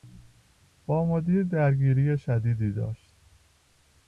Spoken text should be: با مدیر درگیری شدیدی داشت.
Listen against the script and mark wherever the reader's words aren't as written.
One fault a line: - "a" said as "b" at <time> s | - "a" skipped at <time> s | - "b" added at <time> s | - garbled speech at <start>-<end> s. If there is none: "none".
none